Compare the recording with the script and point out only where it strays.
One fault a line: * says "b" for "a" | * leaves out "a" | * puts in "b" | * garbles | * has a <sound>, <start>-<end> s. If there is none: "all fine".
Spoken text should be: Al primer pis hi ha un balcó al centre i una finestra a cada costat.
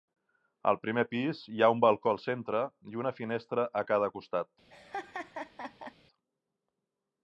* has a laugh, 4.7-5.9 s